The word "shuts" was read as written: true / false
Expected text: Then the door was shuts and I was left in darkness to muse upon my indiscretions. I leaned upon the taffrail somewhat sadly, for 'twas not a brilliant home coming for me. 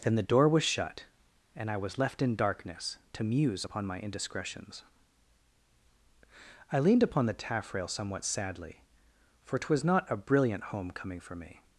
false